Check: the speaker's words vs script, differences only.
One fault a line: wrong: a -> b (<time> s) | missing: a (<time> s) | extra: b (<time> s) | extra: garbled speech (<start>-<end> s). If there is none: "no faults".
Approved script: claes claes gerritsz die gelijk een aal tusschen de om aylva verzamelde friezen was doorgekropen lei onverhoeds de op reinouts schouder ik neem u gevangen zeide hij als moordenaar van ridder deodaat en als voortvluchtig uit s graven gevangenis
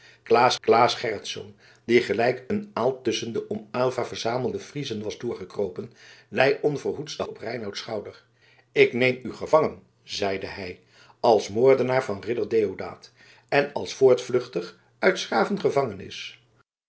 no faults